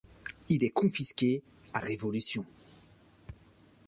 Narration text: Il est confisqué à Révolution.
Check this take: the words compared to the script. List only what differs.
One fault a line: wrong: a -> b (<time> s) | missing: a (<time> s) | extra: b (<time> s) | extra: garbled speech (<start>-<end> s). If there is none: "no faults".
no faults